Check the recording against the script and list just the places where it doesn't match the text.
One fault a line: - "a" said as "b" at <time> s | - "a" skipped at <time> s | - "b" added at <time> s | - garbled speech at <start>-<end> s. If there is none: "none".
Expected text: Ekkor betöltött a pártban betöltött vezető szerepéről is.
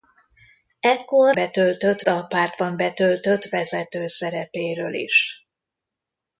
none